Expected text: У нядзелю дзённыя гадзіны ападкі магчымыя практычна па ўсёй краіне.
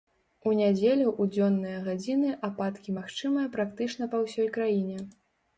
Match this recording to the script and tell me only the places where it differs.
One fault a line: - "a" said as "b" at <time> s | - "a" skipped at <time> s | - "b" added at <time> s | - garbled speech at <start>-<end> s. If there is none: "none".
- "ў" added at 1.1 s